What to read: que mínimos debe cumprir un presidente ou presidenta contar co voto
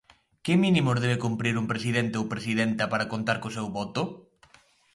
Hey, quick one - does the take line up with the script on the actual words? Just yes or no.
no